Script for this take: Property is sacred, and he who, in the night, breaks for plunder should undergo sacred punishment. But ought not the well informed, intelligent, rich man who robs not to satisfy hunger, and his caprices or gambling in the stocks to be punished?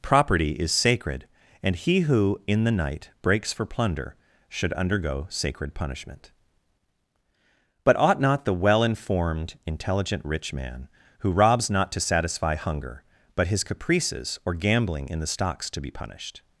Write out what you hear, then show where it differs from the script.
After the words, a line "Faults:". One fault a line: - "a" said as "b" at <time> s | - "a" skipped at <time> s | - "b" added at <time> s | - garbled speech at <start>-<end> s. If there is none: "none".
Property is sacred, and he who, in the night, breaks for plunder should undergo sacred punishment. But ought not the well informed, intelligent, rich man who robs not to satisfy hunger, but his caprices or gambling in the stocks to be punished?
Faults:
- "and" said as "but" at 13.3 s